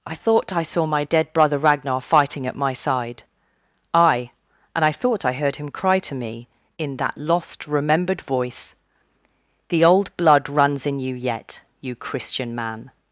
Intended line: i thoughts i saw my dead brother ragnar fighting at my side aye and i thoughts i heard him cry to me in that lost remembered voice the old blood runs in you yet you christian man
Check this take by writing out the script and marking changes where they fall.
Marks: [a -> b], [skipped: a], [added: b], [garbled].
i [thoughts -> thought] i saw my dead brother ragnar fighting at my side aye and i [thoughts -> thought] i heard him cry to me in that lost remembered voice the old blood runs in you yet you christian man